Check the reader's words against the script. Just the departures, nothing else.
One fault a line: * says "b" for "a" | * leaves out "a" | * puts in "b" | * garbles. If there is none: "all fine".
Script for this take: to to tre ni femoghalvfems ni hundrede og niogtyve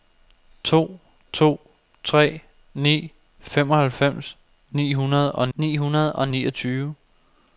* puts in "ni hundrede og"